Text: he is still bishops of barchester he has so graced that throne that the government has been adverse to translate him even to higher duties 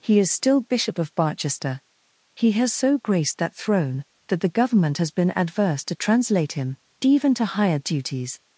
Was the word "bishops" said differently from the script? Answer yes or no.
yes